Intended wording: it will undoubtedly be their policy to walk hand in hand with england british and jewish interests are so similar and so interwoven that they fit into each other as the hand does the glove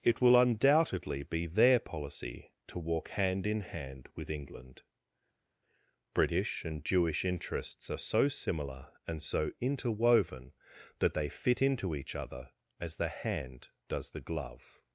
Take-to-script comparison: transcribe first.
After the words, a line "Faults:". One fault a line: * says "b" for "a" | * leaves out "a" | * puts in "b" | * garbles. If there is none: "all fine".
it will undoubtedly be their policy to walk hand in hand with england british and jewish interests are so similar and so interwoven that they fit into each other as the hand does the glove
Faults:
all fine